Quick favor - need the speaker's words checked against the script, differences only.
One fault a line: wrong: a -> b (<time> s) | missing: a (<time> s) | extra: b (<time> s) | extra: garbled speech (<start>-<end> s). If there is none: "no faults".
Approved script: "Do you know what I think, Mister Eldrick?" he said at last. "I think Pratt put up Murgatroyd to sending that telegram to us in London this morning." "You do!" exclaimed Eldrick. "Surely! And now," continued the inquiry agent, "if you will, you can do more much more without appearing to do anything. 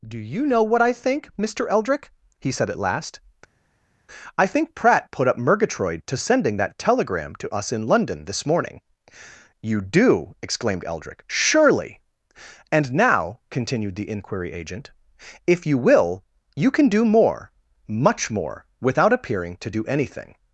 no faults